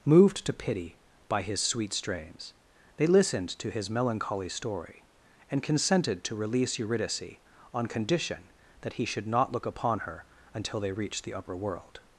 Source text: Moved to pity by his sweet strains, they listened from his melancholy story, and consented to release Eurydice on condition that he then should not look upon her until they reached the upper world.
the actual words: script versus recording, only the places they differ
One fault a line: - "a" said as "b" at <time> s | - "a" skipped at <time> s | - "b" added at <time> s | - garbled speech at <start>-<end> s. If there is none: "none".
- "from" said as "to" at 3.5 s
- "then" skipped at 9.1 s